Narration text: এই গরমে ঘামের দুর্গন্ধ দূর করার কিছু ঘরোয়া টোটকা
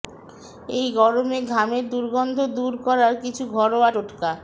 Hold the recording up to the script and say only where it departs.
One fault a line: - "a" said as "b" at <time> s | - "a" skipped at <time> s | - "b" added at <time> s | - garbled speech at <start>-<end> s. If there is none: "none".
none